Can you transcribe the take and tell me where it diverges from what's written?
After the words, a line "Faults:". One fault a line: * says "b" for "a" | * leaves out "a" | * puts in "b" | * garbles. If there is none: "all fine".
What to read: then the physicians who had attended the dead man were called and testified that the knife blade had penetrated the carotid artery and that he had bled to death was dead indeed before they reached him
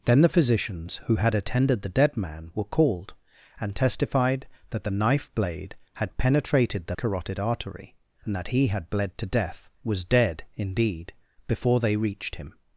then the physicians who had attended the dead man were called and testified that the knife blade had penetrated the carotid artery and that he had bled to death was dead indeed before they reached him
Faults:
all fine